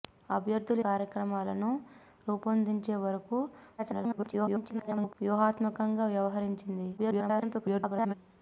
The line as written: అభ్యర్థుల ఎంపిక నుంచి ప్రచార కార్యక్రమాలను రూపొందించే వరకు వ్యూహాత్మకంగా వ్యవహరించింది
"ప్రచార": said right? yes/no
no